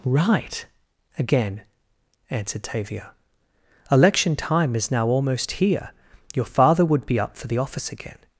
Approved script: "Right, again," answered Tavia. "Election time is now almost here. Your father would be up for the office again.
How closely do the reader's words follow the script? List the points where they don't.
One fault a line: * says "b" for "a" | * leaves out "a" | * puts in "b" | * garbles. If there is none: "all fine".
all fine